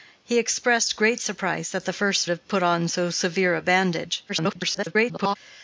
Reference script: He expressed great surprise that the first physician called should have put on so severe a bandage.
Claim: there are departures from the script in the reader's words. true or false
true